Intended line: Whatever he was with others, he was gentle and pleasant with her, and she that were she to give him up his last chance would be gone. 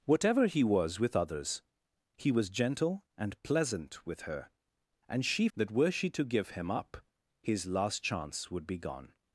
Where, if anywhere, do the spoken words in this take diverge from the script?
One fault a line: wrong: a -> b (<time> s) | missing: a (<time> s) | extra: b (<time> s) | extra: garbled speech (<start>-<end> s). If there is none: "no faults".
no faults